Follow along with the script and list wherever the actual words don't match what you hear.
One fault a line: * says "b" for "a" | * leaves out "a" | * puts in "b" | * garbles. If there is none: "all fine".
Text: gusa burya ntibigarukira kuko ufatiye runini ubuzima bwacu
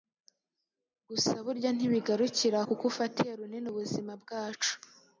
all fine